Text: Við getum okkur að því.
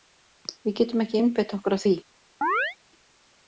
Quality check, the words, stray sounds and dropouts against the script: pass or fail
fail